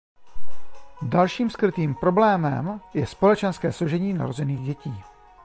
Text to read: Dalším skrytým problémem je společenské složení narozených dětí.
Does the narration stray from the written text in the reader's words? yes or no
no